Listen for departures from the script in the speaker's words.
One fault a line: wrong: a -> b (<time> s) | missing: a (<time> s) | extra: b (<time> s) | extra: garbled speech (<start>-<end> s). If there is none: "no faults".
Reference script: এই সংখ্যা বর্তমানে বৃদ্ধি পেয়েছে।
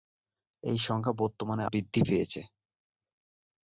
no faults